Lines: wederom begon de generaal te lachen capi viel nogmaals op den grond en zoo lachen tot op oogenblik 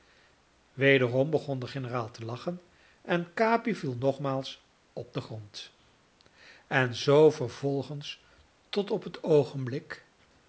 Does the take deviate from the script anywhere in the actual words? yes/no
yes